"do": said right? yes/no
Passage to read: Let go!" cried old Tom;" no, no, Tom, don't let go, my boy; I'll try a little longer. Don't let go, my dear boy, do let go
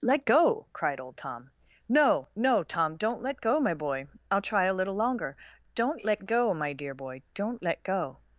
no